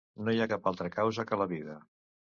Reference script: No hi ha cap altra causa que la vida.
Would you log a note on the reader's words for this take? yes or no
no